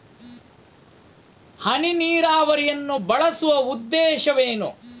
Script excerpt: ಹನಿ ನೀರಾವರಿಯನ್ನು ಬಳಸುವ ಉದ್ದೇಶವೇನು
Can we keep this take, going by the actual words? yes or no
yes